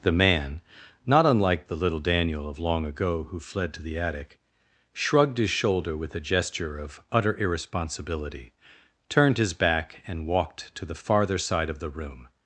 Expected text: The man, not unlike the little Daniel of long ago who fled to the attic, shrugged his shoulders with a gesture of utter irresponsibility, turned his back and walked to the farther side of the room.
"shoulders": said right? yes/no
no